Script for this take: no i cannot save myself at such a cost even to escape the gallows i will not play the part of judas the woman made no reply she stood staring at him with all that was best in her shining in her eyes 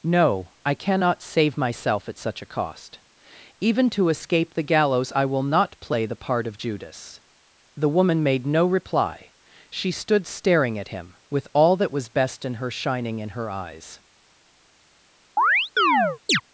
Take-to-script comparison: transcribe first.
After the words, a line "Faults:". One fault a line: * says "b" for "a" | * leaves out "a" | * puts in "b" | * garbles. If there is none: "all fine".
no i cannot save myself at such a cost even to escape the gallows i will not play the part of judas the woman made no reply she stood staring at him with all that was best in her shining in her eyes
Faults:
all fine